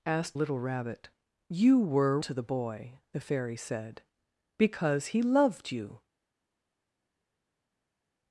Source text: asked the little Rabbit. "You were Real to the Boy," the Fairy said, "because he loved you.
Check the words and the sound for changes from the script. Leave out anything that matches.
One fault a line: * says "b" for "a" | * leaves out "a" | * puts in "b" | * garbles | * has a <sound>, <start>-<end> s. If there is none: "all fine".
* leaves out "the"
* leaves out "Real"